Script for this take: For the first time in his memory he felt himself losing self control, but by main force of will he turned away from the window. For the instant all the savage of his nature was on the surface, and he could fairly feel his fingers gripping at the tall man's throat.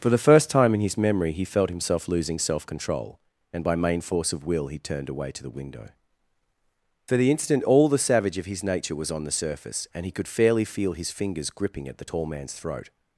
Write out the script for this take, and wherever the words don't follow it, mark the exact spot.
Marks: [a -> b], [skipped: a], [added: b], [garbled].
For the first time in his memory he felt himself losing self control, [but -> and] by main force of will he turned away [from -> to] the window. For the instant all the savage of his nature was on the surface, and he could fairly feel his fingers gripping at the tall man's throat.